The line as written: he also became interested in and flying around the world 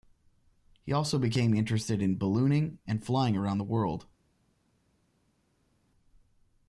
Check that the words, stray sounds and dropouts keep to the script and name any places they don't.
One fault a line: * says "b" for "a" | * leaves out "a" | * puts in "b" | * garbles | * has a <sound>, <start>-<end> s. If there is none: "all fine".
* puts in "ballooning"